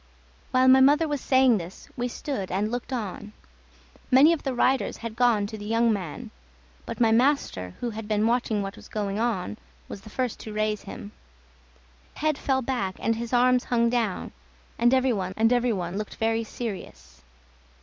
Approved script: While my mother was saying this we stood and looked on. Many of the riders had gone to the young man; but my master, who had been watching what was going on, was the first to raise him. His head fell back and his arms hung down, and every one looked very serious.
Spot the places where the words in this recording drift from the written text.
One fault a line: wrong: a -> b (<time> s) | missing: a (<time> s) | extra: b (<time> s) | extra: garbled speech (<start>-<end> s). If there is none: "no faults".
missing: His (11.1 s)
extra: and every one (15.3 s)